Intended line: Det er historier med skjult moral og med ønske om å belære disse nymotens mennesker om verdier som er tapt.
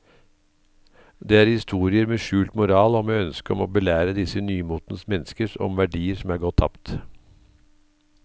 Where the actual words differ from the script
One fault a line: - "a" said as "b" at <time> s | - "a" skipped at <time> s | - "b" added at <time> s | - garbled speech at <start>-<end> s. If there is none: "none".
- "gått" added at 6.5 s